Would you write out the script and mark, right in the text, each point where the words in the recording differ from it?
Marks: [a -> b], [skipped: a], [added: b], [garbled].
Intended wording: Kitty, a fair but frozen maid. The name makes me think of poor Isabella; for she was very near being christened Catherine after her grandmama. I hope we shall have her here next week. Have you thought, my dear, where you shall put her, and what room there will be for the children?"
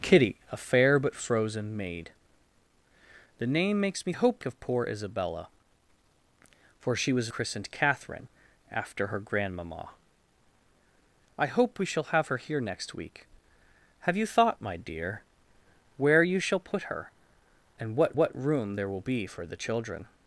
Kitty, a fair but frozen maid. The name makes me [think -> hope] of poor Isabella; for she was [skipped: very near being] christened Catherine after her grandmama. I hope we shall have her here next week. Have you thought, my dear, where you shall put her, and what [added: what] room there will be for the children?"